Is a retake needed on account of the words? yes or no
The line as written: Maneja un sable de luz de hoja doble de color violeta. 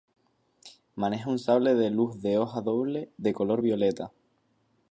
no